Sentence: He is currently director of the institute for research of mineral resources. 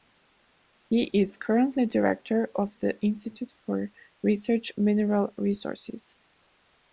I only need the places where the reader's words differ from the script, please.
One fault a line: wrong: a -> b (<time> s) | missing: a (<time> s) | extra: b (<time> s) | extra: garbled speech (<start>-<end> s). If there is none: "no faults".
missing: of (4.7 s)